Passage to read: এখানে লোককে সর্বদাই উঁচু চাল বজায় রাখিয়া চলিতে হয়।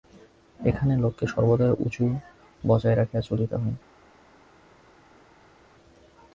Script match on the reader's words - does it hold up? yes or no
no